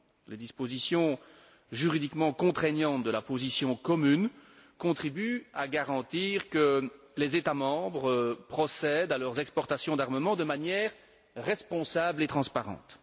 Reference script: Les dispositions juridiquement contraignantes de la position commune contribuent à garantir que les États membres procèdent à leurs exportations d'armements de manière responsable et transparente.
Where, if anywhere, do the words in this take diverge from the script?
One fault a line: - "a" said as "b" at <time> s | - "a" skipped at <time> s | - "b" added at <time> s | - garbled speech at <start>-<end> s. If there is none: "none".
none